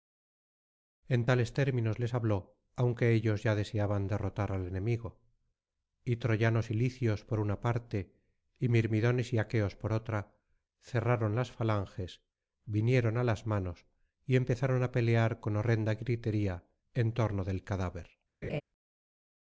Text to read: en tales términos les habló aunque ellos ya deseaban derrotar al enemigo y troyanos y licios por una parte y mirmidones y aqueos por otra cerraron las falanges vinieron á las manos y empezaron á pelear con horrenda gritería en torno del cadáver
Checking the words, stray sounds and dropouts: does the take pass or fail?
fail